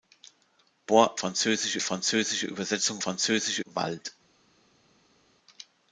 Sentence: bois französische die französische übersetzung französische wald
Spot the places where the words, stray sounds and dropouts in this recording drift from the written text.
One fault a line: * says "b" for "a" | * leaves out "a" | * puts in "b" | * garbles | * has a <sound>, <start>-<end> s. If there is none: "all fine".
all fine